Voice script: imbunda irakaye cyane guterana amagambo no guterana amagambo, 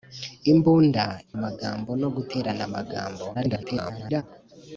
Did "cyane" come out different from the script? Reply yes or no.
yes